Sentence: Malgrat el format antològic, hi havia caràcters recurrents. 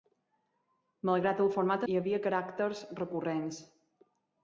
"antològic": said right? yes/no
no